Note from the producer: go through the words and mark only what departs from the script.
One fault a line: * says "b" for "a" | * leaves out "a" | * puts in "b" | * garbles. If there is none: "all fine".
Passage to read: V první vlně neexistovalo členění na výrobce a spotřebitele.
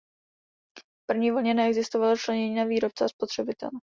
all fine